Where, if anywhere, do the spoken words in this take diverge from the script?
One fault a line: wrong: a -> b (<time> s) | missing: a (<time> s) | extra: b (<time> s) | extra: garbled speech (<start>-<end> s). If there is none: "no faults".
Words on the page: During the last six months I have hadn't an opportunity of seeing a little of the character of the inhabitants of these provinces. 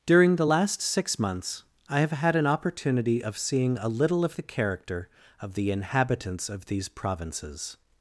wrong: hadn't -> had (2.1 s)